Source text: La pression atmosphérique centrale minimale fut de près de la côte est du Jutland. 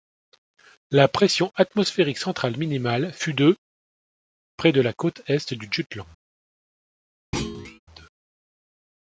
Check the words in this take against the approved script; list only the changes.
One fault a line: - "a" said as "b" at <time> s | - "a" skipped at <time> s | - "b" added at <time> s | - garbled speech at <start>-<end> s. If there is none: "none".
none